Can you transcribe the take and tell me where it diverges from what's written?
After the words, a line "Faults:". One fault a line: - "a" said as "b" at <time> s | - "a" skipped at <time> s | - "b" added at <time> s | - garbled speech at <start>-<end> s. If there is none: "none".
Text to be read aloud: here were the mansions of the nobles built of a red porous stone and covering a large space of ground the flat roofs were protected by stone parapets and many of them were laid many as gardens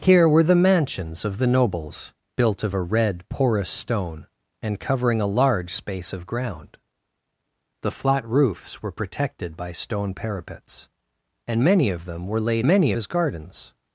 here were the mansions of the nobles built of a red porous stone and covering a large space of ground the flat roofs were protected by stone parapets and many of them were laid many as gardens
Faults:
none